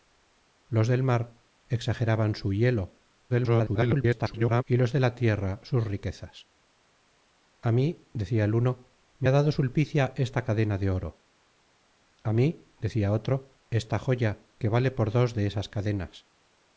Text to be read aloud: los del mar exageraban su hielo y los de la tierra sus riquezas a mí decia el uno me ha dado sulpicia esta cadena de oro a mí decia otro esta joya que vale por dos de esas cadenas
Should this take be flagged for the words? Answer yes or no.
yes